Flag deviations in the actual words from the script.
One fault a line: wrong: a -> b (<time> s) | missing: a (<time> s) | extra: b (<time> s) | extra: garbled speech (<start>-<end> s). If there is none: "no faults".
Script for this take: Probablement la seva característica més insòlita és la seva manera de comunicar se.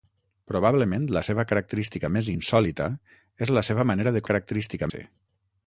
wrong: comunicar -> característica (4.3 s)